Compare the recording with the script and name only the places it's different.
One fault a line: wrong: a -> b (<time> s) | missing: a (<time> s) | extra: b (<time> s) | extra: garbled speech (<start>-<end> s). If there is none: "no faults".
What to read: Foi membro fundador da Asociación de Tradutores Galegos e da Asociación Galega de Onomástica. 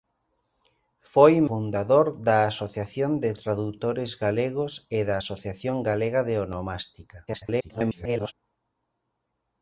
missing: membro (1.3 s)
extra: garbled speech (7.3-8.3 s)